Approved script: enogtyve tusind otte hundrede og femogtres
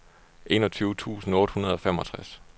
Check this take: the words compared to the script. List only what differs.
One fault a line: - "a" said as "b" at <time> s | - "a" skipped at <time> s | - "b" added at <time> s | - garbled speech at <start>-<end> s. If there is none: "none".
none